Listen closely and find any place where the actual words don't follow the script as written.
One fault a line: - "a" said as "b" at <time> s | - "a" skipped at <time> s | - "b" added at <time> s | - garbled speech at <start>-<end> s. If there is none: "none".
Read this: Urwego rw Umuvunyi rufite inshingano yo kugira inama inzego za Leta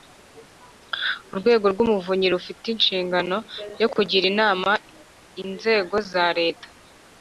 none